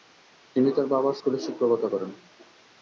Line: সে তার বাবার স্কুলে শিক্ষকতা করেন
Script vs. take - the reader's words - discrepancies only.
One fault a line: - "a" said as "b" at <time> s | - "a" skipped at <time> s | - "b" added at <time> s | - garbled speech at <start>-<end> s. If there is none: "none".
- "সে" said as "তিনি" at 0.6 s